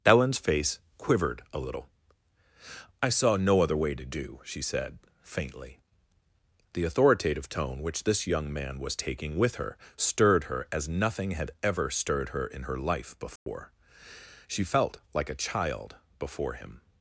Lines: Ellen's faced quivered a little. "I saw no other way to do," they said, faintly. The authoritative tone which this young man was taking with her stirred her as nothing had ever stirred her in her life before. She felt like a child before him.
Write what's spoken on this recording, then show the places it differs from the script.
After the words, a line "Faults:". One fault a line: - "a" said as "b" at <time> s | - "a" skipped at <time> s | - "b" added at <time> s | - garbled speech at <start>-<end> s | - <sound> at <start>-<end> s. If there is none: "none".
Ellen's face quivered a little. "I saw no other way to do," she said, faintly. The authoritative tone which this young man was taking with her stirred her as nothing had ever stirred her in her life before. She felt like a child before him.
Faults:
- "faced" said as "face" at 0.4 s
- "they" said as "she" at 4.4 s
- dropout at 13.4-13.5 s